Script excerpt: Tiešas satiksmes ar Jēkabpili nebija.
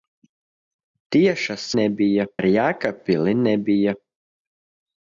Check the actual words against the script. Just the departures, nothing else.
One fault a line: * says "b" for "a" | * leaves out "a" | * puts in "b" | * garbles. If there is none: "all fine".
* says "nebija" for "satiksmes"